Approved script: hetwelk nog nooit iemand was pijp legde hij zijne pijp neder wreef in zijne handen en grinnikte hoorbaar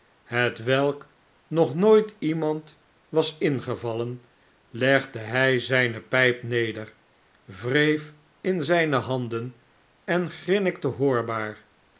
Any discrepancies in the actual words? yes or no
yes